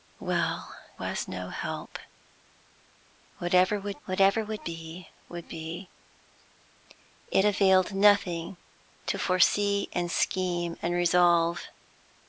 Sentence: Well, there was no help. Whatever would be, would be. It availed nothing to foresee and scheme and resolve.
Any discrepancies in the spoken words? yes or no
yes